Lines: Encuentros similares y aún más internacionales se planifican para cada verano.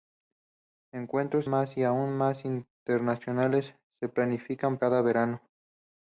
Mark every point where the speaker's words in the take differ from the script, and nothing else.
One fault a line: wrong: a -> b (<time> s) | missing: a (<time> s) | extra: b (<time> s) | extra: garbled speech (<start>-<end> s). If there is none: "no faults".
wrong: similares -> más (1.5 s)
missing: para (4.8 s)